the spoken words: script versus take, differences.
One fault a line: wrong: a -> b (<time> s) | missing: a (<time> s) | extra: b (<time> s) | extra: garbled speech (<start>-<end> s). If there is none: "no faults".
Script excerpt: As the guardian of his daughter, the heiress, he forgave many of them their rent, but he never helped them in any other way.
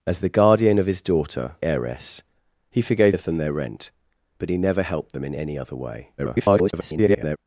missing: the (1.6 s)
missing: many (3.2 s)
extra: garbled speech (6.2-7.4 s)